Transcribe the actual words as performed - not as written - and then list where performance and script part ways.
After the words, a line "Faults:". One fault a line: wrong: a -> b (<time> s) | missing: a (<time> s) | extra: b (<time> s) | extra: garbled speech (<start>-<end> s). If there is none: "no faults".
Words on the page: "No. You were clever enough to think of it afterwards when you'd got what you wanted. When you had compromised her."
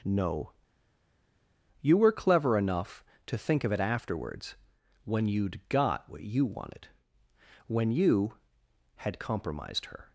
"No. You were clever enough to think of it afterwards when you'd got what you wanted. When you had compromised her."
Faults:
no faults